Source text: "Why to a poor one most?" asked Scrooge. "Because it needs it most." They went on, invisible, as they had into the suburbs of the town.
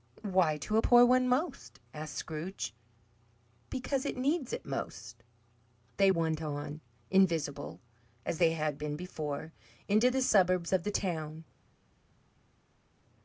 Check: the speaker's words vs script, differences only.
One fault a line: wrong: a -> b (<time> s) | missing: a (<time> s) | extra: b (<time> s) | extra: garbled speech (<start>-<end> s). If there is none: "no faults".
extra: been before (8.8 s)